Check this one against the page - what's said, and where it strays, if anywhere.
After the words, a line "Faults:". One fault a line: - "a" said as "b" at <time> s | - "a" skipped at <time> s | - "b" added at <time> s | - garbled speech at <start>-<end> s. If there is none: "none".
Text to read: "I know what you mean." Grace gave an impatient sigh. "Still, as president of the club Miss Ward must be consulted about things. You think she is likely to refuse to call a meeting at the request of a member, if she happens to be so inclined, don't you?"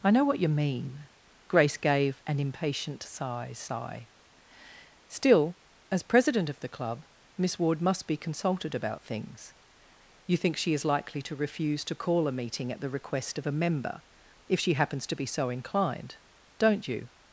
"I know what you mean." Grace gave an impatient sigh sigh. "Still, as president of the club Miss Ward must be consulted about things. You think she is likely to refuse to call a meeting at the request of a member, if she happens to be so inclined, don't you?"
Faults:
- "sigh" added at 3.5 s